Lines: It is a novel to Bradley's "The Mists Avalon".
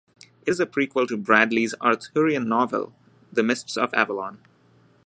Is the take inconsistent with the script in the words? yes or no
yes